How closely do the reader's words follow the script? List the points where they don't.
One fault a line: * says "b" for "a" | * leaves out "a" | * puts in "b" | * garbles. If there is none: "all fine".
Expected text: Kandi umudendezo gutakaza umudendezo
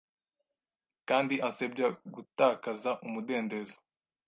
* says "ansebya" for "umudendezo"